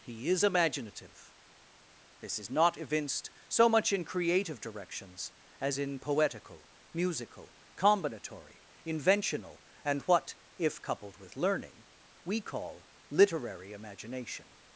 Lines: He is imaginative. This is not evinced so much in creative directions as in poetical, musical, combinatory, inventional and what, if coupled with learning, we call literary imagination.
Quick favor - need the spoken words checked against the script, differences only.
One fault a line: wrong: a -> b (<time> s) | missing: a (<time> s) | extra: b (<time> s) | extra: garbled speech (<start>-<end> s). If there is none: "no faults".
no faults